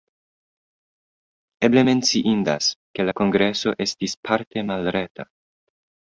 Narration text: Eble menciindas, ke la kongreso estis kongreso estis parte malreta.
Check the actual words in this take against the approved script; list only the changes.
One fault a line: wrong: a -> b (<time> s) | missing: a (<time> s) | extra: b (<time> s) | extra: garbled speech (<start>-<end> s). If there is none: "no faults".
missing: kongreso estis (4.2 s)